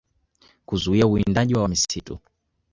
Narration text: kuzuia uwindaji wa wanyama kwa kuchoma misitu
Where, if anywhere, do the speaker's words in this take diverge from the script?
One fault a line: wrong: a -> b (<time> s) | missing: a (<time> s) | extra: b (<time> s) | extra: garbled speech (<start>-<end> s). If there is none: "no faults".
missing: wanyama kwa kuchoma (1.6 s)